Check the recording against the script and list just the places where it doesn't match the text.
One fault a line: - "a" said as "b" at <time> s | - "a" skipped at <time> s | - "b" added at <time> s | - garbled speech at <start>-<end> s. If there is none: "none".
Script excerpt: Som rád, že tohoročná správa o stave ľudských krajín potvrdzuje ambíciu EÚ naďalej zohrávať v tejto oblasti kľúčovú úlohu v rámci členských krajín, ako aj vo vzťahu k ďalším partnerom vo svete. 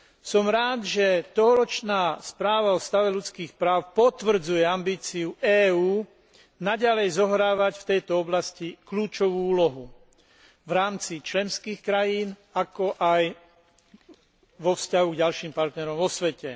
- "krajín" said as "práv" at 3.6 s